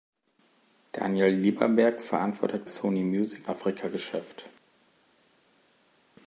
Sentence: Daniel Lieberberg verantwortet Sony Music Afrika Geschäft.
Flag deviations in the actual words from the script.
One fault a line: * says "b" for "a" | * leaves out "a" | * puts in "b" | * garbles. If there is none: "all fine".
all fine